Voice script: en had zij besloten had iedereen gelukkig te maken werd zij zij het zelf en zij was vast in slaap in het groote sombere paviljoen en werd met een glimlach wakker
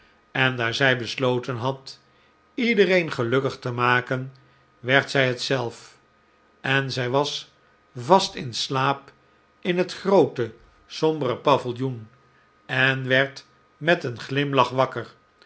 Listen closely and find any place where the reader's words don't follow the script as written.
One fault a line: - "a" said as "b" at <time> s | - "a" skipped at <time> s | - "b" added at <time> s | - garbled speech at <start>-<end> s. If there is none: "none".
- "had" said as "daar" at 0.6 s
- "zij" skipped at 5.3 s